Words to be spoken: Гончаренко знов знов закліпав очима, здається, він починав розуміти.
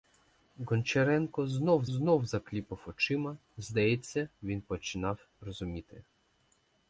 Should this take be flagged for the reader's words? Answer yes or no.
no